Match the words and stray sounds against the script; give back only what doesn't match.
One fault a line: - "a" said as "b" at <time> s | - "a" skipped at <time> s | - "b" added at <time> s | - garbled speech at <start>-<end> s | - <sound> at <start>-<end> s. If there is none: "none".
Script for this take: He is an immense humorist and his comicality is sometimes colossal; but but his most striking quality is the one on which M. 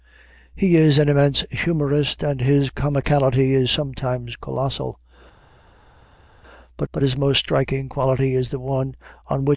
none